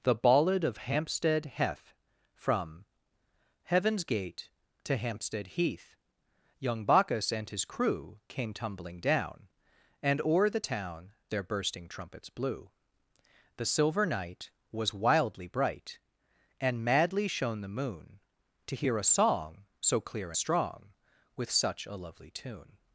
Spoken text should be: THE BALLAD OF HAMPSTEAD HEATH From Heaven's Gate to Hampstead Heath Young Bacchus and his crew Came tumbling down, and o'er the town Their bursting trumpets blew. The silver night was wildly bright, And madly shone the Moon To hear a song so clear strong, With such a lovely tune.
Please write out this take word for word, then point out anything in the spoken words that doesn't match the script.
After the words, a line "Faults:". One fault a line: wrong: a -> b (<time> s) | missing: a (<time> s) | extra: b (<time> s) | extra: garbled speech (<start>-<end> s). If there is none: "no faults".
THE BALLAD OF HAMPSTEAD HEATH From Heaven's Gate to Hampstead Heath Young Bacchus and his crew Came tumbling down, and o'er the town Their bursting trumpets blew. The silver night was wildly bright, And madly shone the Moon To hear a song so clear strong, With such a lovely tune.
Faults:
no faults